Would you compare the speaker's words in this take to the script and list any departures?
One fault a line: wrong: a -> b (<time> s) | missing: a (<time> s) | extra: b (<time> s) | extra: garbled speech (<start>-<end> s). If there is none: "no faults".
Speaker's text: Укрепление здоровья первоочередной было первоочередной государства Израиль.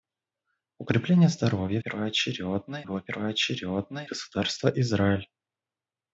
no faults